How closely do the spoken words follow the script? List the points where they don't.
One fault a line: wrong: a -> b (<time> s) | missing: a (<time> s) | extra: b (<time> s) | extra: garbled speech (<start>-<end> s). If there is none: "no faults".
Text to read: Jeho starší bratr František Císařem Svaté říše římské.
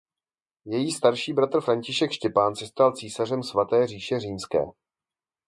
wrong: Jeho -> Její (0.7 s)
extra: Štěpán se stal (2.1 s)